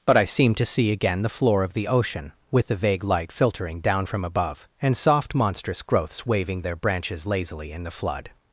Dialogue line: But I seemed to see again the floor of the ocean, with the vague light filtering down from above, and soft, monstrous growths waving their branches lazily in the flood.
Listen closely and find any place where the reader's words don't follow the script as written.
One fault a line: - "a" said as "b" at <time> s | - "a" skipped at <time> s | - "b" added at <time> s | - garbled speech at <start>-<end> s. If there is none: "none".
none